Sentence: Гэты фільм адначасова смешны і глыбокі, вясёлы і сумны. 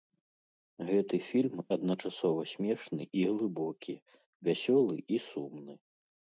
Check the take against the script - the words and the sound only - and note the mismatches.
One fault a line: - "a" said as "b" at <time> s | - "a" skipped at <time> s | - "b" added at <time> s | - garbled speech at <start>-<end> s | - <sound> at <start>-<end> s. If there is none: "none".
none